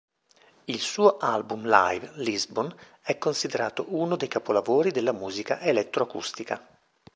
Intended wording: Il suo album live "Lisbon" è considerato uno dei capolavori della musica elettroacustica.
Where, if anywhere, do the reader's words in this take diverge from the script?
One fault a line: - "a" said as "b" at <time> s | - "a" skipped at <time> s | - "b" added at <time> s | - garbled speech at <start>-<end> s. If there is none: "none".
none